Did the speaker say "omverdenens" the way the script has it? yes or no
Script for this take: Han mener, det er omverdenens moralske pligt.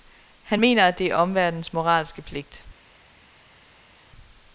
yes